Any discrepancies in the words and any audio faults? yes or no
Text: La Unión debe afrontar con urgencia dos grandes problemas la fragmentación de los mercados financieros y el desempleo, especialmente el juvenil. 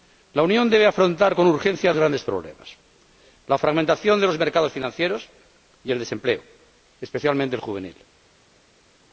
yes